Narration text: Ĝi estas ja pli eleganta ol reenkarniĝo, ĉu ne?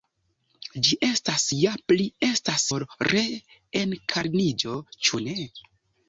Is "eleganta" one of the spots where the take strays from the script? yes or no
yes